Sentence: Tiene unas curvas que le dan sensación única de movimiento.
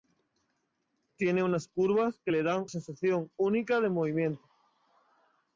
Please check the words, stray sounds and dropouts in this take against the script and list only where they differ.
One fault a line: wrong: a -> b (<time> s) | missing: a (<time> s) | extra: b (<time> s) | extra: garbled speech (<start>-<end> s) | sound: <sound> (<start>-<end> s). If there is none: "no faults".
no faults